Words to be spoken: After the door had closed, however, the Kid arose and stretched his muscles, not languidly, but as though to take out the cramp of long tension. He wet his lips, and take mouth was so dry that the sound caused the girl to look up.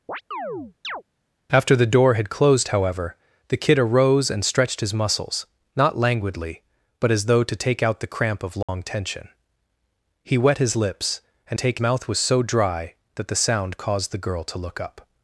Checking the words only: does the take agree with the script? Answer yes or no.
yes